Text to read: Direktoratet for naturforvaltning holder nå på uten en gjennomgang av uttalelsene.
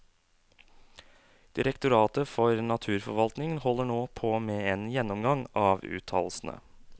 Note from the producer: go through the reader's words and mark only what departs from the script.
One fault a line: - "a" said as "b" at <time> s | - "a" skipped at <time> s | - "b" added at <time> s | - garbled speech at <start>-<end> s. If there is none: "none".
- "uten" said as "med" at 4.4 s